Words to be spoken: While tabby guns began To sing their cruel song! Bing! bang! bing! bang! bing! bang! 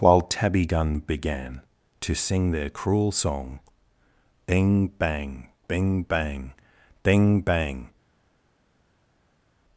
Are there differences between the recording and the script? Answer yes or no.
yes